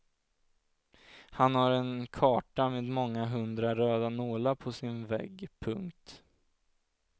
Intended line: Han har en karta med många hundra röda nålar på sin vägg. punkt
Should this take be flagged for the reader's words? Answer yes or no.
no